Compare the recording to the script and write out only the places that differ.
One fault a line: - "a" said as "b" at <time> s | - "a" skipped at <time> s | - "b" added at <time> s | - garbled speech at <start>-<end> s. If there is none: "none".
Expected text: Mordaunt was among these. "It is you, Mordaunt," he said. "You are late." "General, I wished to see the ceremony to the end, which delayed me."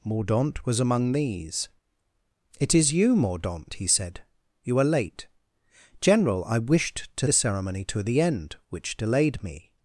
- "see" skipped at 7.3 s